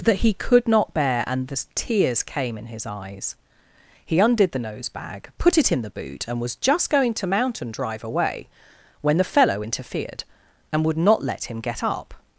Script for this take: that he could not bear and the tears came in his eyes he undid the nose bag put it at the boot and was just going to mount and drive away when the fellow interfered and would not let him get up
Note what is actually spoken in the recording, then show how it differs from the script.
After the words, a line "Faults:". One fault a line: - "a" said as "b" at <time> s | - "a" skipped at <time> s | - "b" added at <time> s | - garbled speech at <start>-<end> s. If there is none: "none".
that he could not bear and the tears came in his eyes he undid the nose bag put it in the boot and was just going to mount and drive away when the fellow interfered and would not let him get up
Faults:
- "at" said as "in" at 5.7 s